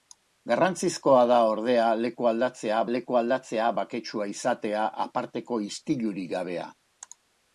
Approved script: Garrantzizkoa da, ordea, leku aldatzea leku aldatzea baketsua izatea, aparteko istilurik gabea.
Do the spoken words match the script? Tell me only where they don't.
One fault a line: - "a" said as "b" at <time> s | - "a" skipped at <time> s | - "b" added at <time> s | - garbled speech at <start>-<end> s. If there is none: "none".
none